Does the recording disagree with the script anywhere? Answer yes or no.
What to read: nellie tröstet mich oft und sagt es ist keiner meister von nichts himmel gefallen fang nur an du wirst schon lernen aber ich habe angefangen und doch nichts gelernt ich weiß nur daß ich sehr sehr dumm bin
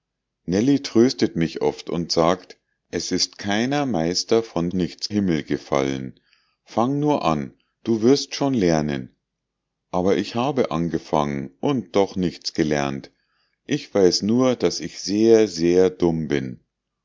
no